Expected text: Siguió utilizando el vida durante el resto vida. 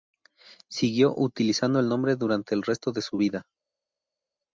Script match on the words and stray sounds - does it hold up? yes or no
no